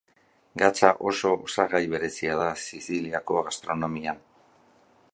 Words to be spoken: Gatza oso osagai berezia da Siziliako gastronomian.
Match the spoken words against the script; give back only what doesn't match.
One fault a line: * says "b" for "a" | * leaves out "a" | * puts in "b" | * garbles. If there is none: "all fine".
all fine